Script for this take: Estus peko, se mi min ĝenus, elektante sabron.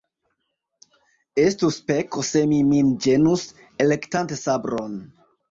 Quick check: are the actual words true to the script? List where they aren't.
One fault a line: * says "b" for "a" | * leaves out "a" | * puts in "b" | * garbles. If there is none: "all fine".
all fine